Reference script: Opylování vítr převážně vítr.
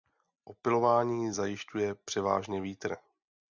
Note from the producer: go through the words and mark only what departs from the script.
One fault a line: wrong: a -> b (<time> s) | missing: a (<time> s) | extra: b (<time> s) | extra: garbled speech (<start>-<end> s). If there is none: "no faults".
wrong: vítr -> zajišťuje (1.3 s)